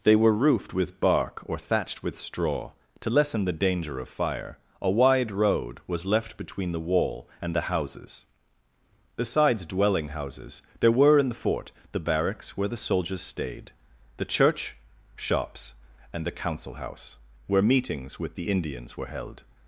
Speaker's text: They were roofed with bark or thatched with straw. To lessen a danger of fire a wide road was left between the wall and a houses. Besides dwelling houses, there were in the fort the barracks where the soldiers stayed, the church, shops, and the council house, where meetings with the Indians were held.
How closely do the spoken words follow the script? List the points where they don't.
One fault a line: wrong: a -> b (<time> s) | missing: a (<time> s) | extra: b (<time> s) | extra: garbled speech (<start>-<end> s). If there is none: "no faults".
wrong: a -> the (3.5 s)
wrong: a -> the (7.5 s)